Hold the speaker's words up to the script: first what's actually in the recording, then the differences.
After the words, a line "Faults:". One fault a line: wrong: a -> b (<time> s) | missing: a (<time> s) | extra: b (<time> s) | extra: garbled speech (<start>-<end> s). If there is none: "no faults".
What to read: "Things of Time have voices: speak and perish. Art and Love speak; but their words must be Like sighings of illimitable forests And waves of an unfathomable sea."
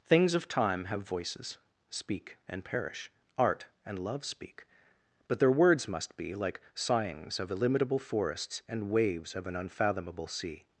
"Things of Time have voices: speak and perish. Art and Love speak; but their words must be Like sighings of illimitable forests And waves of an unfathomable sea."
Faults:
no faults